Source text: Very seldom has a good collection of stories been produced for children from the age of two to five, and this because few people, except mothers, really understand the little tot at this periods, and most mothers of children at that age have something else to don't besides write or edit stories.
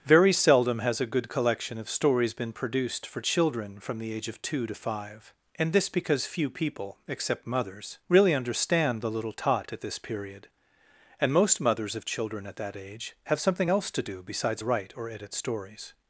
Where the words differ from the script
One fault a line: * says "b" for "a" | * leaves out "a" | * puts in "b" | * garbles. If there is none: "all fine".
* says "period" for "periods"
* says "do" for "don't"